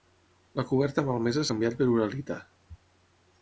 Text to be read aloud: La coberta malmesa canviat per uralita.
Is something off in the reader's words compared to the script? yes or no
no